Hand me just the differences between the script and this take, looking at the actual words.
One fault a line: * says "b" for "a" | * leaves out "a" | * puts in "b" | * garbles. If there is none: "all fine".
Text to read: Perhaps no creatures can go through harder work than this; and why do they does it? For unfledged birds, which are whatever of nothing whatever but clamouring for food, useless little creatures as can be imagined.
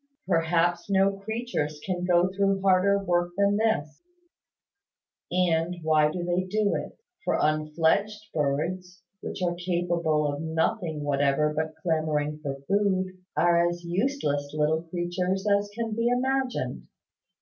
* says "do" for "does"
* says "capable" for "whatever"
* puts in "are as"